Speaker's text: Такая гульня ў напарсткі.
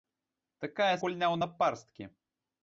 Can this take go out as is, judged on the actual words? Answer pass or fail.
pass